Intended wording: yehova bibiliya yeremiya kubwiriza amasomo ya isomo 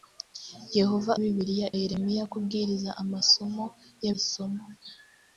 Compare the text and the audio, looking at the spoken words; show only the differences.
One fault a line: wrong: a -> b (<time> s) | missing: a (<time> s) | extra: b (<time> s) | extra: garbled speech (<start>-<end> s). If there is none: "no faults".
no faults